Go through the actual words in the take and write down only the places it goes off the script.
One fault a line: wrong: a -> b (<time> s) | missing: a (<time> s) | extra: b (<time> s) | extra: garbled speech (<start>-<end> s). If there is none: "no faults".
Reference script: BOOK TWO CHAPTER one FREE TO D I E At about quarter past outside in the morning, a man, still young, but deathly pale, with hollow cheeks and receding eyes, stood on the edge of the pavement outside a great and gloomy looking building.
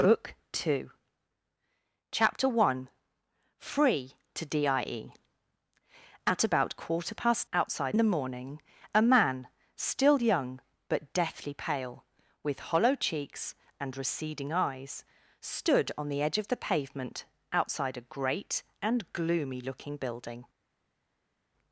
no faults